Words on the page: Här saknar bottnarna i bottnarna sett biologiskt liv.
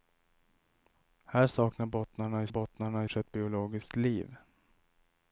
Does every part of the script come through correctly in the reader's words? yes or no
yes